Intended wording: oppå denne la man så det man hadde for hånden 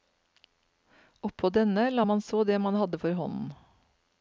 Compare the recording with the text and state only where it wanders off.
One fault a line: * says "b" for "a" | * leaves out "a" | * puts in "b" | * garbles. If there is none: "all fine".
all fine